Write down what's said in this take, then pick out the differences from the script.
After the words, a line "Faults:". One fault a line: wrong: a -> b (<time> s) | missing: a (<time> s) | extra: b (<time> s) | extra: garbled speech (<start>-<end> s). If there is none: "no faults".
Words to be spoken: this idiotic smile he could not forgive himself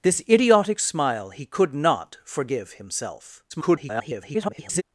this idiotic smile he could not forgive himself [garbled]
Faults:
extra: garbled speech (3.5-4.8 s)